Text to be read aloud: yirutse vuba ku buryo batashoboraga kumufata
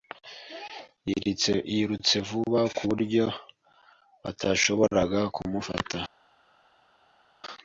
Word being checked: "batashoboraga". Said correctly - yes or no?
yes